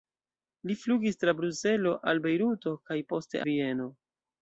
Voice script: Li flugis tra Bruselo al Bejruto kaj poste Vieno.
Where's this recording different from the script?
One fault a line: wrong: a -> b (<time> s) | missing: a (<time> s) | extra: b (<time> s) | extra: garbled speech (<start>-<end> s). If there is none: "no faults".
no faults